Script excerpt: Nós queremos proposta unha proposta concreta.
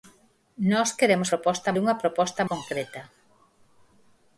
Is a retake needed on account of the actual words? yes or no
no